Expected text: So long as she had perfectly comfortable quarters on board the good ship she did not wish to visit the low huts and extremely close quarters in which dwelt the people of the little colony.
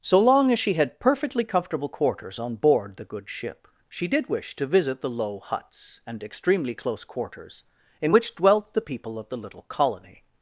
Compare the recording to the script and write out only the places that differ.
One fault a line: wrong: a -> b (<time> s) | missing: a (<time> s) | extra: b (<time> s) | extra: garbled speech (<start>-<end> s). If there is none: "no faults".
missing: not (4.3 s)